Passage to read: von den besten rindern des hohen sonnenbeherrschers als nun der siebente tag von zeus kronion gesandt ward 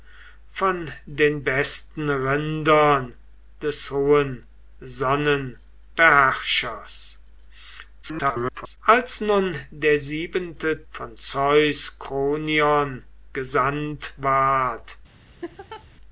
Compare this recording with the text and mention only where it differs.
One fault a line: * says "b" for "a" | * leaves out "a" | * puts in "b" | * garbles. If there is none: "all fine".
* garbles
* leaves out "tag"